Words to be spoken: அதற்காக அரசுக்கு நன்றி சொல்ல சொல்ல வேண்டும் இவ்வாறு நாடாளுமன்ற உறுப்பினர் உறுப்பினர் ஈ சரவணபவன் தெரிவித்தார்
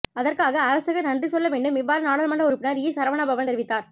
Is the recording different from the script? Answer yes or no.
yes